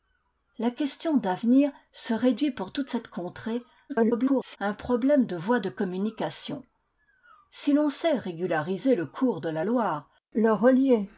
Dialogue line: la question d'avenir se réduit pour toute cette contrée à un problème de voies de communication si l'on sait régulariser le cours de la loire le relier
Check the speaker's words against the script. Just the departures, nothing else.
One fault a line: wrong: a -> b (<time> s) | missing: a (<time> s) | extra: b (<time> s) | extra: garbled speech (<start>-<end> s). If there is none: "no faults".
extra: garbled speech (3.9-4.6 s)